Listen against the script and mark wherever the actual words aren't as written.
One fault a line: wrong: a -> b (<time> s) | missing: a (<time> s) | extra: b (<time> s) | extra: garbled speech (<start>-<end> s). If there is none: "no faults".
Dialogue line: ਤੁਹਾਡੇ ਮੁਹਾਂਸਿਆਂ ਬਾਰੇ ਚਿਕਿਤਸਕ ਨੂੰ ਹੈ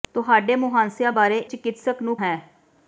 no faults